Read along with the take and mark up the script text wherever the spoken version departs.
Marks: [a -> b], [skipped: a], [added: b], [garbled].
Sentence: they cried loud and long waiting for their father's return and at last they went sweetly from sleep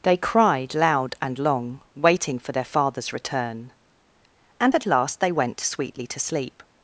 they cried loud and long waiting for their father's return and at last they went sweetly [from -> to] sleep